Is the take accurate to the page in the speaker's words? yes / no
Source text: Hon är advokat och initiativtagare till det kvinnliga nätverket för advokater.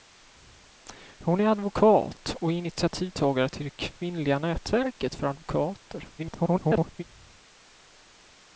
no